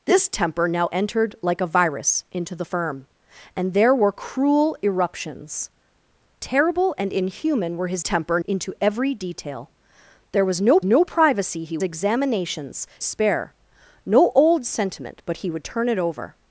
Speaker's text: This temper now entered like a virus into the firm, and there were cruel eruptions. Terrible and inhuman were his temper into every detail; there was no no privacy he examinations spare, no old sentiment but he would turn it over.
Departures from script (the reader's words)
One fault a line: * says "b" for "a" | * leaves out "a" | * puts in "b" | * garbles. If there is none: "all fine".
all fine